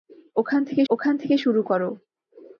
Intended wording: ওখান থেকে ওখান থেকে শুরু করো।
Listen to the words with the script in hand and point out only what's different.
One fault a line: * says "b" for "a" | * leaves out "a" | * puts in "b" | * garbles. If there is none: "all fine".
all fine